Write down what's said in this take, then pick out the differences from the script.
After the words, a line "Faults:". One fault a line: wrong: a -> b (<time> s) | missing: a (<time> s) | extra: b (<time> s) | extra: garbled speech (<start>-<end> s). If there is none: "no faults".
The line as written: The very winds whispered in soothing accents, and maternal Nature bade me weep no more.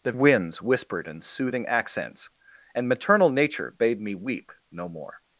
The winds whispered in soothing accents, and maternal Nature bade me weep no more.
Faults:
missing: very (0.1 s)